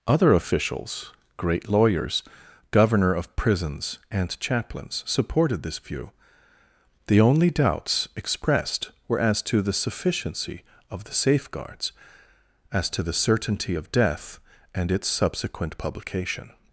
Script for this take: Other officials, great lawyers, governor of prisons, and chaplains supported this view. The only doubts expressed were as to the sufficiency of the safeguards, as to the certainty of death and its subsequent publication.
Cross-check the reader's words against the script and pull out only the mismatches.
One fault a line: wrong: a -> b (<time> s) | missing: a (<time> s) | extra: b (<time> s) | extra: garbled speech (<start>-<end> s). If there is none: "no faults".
no faults